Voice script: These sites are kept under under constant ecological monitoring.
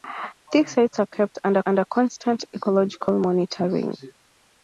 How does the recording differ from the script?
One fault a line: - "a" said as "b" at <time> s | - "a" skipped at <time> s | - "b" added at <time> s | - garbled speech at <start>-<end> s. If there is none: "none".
none